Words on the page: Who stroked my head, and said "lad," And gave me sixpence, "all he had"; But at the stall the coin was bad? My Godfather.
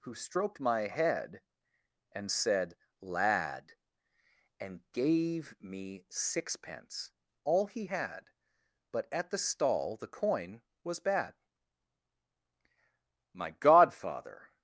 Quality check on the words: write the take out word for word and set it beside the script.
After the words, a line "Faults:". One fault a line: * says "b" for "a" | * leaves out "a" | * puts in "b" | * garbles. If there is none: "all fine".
Who stroked my head, and said "lad," And gave me sixpence, "all he had"; But at the stall the coin was bad? My Godfather.
Faults:
all fine